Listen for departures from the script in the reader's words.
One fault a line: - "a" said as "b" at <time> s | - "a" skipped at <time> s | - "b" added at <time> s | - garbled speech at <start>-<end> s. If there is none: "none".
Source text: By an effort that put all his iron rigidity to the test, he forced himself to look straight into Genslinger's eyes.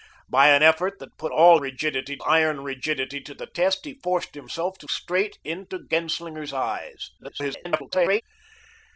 - "his" said as "rigidity" at 1.6 s
- "look" skipped at 4.9 s
- garbled speech at 7.2-8.2 s